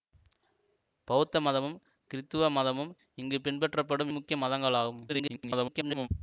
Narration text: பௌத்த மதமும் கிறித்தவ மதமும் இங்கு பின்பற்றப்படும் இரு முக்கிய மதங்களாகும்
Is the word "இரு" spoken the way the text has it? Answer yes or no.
no